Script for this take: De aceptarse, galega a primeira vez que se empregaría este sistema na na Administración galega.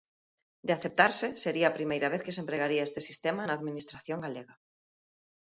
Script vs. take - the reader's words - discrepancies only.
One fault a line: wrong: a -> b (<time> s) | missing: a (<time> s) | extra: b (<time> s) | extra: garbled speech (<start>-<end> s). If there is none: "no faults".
wrong: galega -> sería (1.4 s)
missing: na (3.6 s)